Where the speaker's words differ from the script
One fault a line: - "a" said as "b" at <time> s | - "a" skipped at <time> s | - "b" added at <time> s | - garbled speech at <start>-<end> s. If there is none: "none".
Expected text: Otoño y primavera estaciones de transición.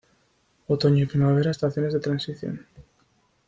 none